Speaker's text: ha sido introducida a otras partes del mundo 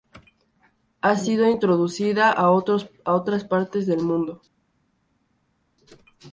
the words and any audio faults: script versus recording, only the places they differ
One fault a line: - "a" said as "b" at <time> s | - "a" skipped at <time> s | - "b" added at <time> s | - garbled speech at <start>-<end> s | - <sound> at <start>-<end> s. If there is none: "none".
none